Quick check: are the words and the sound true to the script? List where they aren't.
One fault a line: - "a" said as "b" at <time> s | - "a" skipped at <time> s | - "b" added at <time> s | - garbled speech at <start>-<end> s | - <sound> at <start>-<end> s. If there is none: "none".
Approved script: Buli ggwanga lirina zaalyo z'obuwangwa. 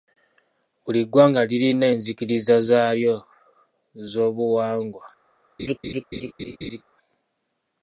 - "enzikiriza" added at 1.9 s
- laugh at 5.6-6.8 s